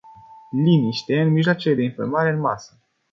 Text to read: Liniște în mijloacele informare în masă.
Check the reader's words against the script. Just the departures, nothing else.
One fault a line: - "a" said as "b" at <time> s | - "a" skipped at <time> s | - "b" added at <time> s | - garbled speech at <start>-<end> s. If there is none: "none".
- "de" added at 1.7 s